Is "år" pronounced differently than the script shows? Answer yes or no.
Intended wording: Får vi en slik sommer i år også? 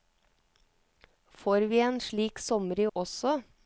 yes